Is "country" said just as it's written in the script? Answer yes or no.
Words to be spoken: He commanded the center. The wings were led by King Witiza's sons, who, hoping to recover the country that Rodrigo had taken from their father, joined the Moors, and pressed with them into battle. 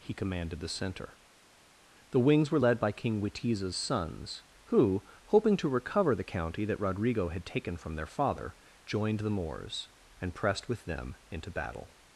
no